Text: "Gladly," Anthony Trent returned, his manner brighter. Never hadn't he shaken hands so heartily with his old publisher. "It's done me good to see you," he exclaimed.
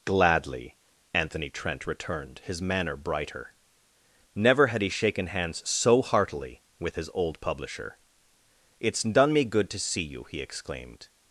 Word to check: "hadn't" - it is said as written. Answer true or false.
false